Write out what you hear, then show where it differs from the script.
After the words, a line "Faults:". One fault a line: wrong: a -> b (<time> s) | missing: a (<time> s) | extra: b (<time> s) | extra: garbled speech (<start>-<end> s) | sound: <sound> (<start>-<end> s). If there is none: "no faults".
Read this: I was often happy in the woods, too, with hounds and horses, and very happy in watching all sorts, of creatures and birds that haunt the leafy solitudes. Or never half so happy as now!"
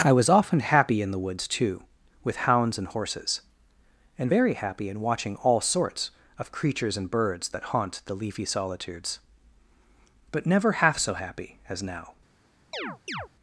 I was often happy in the woods, too, with hounds and horses, and very happy in watching all sorts, of creatures and birds that haunt the leafy solitudes. But never half so happy as now!"
Faults:
wrong: Or -> But (10.3 s)
sound: chirp (12.7-13.3 s)